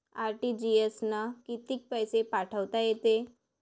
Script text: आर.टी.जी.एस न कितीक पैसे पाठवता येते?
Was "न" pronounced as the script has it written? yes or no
yes